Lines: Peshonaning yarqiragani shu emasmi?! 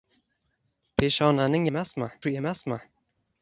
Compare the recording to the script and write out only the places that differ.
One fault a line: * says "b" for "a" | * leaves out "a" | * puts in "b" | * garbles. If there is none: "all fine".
* says "emasmi" for "yarqiragani"